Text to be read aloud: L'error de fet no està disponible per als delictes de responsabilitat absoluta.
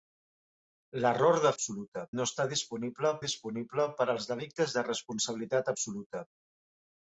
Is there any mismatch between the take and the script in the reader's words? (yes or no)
yes